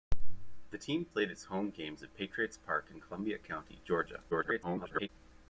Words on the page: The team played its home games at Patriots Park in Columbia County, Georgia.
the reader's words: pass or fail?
fail